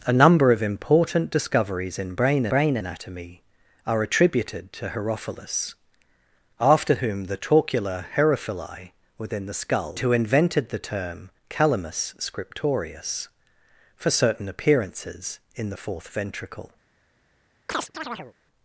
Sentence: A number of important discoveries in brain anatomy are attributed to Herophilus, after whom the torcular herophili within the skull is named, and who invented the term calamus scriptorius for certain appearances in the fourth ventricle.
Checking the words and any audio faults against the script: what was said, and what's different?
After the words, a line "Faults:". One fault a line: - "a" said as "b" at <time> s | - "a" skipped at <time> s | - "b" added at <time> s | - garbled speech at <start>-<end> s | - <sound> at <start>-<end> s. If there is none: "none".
A number of important discoveries in brain brain anatomy are attributed to Herophilus, after whom the torcular herophili within the skull who invented the term calamus scriptorius for certain appearances in the fourth ventricle.
Faults:
- "brain" added at 2.5 s
- "is named and" skipped at 10.0 s
- chirp at 17.7-18.3 s